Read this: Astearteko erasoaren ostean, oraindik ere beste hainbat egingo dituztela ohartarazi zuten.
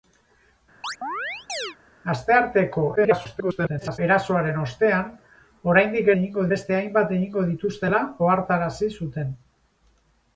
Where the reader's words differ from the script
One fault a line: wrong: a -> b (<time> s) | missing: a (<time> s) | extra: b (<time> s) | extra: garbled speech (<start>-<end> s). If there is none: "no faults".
extra: garbled speech (3.0-4.0 s)
wrong: ere -> egingo (6.2 s)